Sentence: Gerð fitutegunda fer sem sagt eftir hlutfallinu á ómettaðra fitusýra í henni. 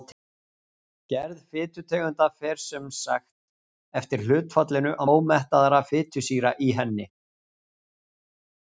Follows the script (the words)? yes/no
yes